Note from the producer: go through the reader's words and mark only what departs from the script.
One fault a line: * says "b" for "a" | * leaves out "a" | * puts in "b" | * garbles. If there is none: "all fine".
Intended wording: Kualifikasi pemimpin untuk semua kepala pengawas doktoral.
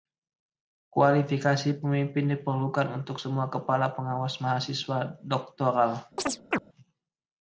* puts in "diperlukan"
* puts in "mahasiswa"